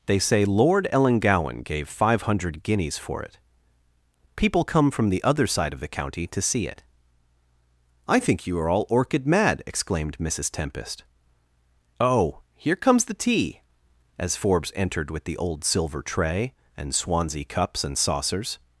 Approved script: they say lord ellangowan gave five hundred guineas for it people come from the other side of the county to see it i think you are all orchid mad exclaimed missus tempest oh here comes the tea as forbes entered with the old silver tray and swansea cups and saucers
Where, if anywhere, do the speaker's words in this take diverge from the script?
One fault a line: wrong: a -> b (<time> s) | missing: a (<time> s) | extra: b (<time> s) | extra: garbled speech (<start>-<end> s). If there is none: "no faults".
no faults